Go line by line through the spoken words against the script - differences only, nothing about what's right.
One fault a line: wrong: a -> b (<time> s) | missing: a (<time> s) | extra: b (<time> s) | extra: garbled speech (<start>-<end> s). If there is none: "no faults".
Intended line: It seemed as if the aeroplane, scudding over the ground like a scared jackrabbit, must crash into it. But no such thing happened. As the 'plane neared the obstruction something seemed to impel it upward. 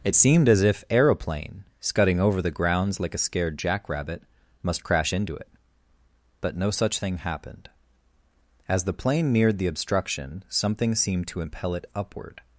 missing: the (0.8 s)
wrong: ground -> grounds (2.5 s)